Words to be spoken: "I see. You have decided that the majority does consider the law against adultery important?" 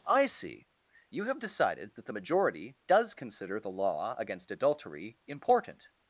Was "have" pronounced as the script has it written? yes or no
yes